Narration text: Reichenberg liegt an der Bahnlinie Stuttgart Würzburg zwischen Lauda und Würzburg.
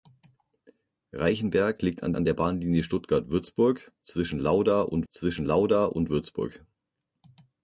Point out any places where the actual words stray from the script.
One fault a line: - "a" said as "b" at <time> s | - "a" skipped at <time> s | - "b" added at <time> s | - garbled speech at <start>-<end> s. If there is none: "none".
- "an" added at 2.1 s
- "zwischen Lauda und" added at 5.1 s